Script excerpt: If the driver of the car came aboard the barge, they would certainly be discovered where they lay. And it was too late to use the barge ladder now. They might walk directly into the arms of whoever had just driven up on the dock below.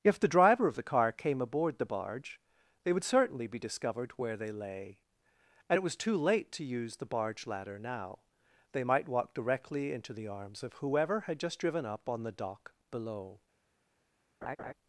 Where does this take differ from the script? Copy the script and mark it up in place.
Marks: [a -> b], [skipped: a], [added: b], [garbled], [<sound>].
If the driver of the car came aboard the barge, they would certainly be discovered where they lay. And it was too late to use the barge ladder now. They might walk directly into the arms of whoever had just driven up on the dock below. [laugh]